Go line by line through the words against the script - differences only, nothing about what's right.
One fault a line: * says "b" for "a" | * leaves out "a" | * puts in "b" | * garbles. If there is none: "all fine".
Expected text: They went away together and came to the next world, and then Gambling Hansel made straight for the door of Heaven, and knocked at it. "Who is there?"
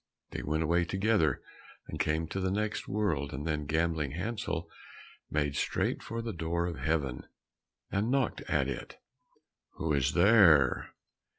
all fine